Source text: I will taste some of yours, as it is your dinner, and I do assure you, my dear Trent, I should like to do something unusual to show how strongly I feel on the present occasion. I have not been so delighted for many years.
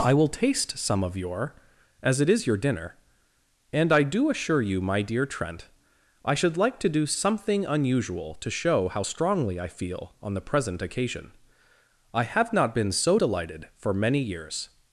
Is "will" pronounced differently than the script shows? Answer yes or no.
no